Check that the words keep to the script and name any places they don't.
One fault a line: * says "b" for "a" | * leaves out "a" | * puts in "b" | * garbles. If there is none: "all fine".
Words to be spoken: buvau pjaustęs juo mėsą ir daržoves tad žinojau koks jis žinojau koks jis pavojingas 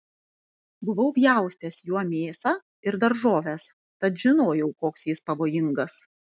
* leaves out "žinojau koks jis"